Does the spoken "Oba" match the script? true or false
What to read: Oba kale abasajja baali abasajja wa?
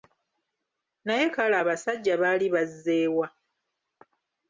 false